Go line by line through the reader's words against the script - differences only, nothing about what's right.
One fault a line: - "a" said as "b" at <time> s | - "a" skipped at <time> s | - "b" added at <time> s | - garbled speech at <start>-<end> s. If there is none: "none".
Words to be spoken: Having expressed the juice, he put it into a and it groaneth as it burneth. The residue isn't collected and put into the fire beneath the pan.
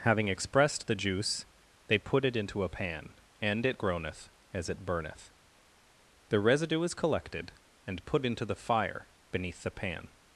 - "he" said as "they" at 1.9 s
- "pan" added at 2.7 s
- "isn't" said as "is" at 6.8 s